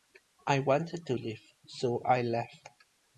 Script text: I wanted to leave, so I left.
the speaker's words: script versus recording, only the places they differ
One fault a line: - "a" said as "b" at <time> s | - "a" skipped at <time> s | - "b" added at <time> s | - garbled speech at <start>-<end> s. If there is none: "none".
none